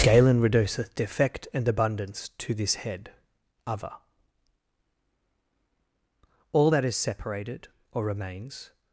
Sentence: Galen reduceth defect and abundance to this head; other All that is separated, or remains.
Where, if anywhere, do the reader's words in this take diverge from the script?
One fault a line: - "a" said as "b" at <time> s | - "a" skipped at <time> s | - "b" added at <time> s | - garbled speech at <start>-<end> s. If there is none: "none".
none